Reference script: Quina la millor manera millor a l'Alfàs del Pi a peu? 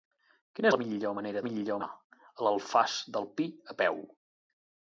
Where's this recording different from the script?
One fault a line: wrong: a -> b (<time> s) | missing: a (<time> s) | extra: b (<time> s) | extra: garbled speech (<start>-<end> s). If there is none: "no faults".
no faults